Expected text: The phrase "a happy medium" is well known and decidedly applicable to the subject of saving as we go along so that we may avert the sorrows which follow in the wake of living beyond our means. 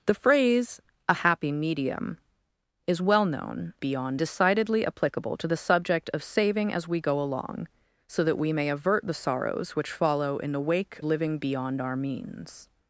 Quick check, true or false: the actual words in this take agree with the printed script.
false